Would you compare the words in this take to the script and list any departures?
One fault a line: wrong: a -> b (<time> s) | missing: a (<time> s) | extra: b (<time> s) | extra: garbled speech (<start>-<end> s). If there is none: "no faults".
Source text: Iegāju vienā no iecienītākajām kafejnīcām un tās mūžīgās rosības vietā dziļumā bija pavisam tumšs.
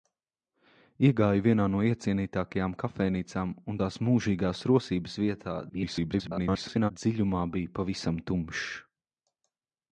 extra: garbled speech (5.7-6.9 s)